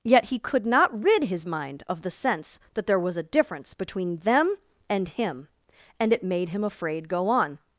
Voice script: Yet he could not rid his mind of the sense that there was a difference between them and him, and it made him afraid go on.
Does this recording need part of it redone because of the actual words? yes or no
no